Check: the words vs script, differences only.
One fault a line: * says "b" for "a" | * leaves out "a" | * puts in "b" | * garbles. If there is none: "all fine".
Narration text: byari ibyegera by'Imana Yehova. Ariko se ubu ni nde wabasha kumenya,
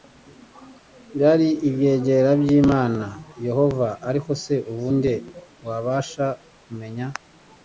* leaves out "ni"